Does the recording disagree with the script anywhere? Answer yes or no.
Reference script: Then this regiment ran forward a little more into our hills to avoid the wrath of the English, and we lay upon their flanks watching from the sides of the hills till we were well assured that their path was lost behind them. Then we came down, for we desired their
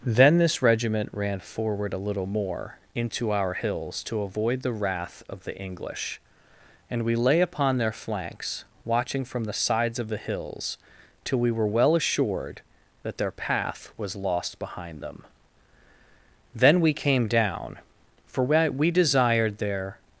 no